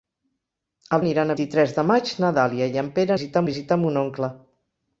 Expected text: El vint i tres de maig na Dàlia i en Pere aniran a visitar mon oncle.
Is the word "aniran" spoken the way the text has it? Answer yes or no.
no